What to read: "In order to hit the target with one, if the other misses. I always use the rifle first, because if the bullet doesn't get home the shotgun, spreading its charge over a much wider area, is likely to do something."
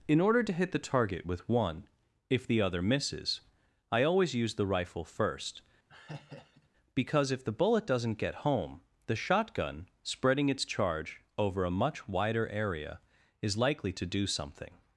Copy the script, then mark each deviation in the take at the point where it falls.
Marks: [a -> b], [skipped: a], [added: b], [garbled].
"In order to hit the target with one, if the other misses. I always use the rifle first, because if the bullet doesn't get home the shotgun, spreading its charge over a much wider area, is likely to do something."